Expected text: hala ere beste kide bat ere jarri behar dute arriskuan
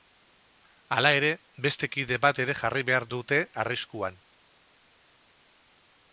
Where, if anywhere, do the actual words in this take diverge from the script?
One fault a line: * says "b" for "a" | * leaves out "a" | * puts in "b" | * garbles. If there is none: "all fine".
all fine